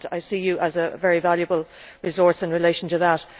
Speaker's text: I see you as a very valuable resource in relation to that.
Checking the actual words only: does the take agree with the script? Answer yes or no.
yes